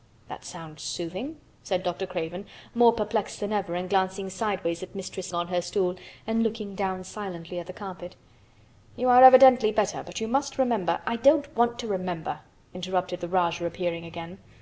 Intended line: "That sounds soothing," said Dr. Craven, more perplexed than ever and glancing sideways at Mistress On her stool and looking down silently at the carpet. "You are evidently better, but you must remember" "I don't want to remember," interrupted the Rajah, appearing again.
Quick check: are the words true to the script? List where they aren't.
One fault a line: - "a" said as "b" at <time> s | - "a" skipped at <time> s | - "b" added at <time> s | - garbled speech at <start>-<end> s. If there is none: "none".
none